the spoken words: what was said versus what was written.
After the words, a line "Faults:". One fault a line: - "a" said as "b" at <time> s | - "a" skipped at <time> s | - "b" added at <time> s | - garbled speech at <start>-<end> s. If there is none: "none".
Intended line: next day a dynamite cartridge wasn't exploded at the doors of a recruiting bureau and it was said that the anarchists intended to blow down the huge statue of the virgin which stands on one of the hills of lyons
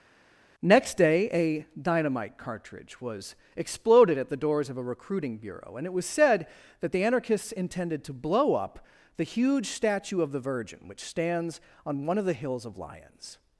next day a dynamite cartridge was exploded at the doors of a recruiting bureau and it was said that the anarchists intended to blow up the huge statue of the virgin which stands on one of the hills of lyons
Faults:
- "wasn't" said as "was" at 3.0 s
- "down" said as "up" at 8.5 s